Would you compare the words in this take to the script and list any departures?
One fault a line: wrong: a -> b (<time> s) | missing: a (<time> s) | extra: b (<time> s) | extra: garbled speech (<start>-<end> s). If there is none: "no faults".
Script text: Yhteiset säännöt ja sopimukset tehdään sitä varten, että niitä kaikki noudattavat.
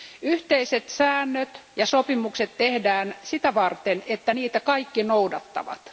no faults